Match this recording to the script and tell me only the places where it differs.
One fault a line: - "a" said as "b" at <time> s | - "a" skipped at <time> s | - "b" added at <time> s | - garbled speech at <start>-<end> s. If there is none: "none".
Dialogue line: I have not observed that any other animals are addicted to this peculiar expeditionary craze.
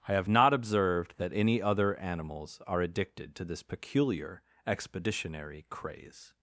none